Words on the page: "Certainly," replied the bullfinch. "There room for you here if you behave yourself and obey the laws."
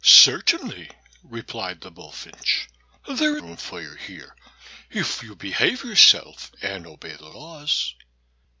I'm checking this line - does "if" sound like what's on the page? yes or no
yes